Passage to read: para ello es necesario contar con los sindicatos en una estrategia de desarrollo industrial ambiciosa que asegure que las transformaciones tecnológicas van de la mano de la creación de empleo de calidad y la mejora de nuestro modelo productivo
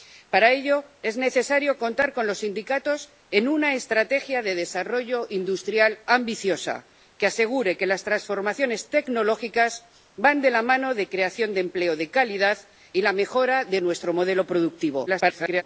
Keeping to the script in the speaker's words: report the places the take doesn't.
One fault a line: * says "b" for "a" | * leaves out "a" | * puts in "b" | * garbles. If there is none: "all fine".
* garbles